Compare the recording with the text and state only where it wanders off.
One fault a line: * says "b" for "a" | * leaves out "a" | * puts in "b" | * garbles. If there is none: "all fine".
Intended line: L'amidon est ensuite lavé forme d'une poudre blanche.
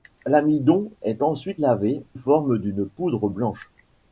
all fine